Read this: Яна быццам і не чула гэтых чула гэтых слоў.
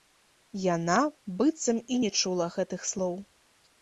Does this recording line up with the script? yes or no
no